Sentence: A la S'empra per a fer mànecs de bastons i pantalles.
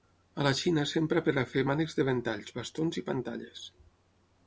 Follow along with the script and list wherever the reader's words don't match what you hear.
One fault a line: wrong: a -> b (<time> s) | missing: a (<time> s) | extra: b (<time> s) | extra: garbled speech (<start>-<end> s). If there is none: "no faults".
extra: Xina (0.6 s)
extra: ventalls (2.1 s)